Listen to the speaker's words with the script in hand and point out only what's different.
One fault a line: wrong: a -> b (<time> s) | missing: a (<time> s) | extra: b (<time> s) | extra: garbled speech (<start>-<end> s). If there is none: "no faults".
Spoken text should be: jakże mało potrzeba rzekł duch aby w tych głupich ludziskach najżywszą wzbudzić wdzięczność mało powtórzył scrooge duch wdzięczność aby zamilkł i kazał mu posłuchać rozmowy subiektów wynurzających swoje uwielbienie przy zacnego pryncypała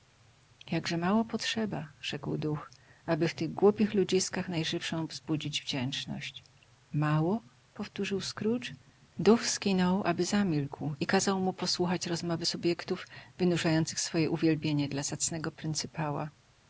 wrong: wdzięczność -> skinął (9.5 s)
wrong: przy -> dla (14.9 s)